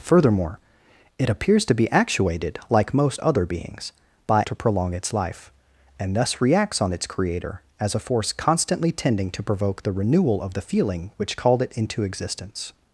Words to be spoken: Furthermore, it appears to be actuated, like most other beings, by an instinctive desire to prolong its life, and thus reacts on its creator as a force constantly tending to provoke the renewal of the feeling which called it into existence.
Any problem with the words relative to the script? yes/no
yes